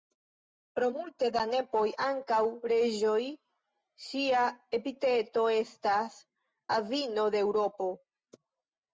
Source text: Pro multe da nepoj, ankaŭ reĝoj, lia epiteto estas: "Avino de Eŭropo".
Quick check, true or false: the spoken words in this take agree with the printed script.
false